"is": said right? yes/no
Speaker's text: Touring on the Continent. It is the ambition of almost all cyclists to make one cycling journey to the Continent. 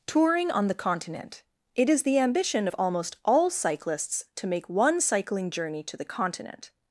yes